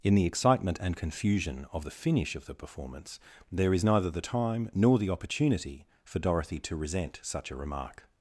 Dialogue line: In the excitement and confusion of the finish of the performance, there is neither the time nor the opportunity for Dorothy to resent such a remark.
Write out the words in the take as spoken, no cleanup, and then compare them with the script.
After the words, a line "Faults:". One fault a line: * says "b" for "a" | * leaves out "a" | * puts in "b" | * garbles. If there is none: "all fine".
In the excitement and confusion of the finish of the performance, there is neither the time nor the opportunity for Dorothy to resent such a remark.
Faults:
all fine